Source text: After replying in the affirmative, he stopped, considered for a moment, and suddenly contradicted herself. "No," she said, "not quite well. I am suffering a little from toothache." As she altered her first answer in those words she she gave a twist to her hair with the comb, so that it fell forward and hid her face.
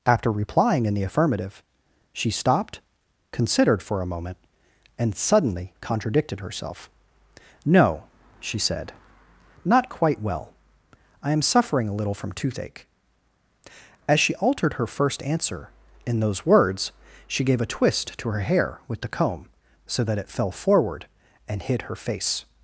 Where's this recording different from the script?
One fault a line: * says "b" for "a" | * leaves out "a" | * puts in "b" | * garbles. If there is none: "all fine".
* says "she" for "he"
* leaves out "she"